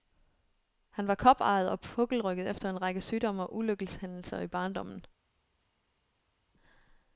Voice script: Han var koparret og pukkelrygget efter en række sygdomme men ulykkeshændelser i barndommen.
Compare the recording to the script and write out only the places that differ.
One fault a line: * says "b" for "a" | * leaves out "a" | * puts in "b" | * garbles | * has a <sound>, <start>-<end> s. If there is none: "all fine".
* says "og" for "men"